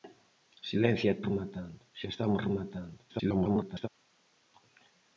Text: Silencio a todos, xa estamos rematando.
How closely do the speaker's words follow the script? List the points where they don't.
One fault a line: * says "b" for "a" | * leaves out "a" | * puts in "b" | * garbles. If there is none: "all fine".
* says "rematando" for "todos"
* garbles